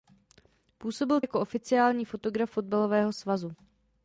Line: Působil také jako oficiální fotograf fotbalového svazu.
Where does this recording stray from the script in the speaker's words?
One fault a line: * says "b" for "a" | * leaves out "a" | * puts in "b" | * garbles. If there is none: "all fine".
* leaves out "také"